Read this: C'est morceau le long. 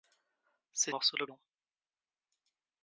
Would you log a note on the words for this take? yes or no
no